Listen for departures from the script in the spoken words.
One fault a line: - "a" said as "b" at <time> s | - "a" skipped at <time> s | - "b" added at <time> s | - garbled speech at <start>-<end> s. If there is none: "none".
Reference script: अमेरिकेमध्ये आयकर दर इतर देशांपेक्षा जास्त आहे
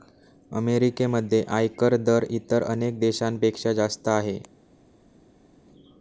- "अनेक" added at 2.6 s